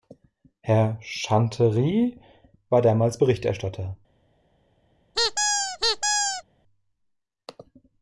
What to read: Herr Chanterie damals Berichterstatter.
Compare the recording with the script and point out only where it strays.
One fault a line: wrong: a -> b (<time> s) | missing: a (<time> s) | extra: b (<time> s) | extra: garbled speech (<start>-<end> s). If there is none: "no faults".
extra: war (2.7 s)